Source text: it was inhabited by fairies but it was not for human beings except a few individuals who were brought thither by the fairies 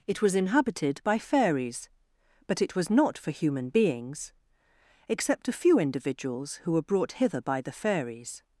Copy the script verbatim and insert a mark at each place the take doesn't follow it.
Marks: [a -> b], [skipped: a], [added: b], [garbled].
it was inhabited by fairies but it was not for human beings except a few individuals who were brought [thither -> hither] by the fairies